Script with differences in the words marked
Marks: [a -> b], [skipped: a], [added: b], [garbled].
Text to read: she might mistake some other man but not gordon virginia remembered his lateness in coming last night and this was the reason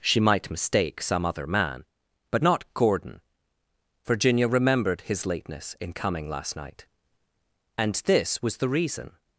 she might mistake some other man but not gordon virginia remembered his lateness in coming last night and this was the reason